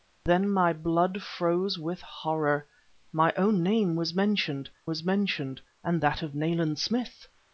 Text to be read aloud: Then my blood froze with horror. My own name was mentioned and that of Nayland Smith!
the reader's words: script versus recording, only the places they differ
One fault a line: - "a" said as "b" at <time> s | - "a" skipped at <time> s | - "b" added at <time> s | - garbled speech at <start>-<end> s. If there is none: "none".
- "was mentioned" added at 4.8 s